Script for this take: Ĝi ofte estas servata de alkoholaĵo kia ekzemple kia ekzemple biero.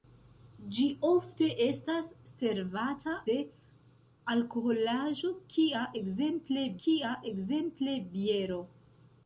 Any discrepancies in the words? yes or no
no